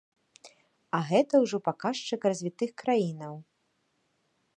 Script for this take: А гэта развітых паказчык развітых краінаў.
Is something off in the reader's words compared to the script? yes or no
yes